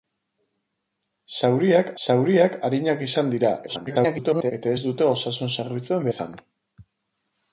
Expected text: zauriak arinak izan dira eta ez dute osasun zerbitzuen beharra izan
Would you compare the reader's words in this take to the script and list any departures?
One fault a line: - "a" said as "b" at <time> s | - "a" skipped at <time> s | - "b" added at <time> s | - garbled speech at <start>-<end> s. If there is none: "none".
- "zauriak" added at 2.0 s
- garbled speech at 3.7-4.5 s
- "beharra" skipped at 6.1 s